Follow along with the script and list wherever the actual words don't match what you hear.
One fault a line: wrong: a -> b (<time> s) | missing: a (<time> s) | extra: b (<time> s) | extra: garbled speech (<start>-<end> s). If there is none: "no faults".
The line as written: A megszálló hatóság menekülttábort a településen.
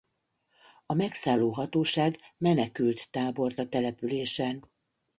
no faults